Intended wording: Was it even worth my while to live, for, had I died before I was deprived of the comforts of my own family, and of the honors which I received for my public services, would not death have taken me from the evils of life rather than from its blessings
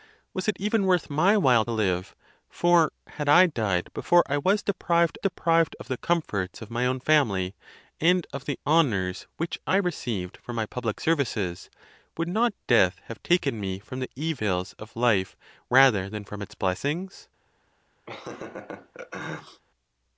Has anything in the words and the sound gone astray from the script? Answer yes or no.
yes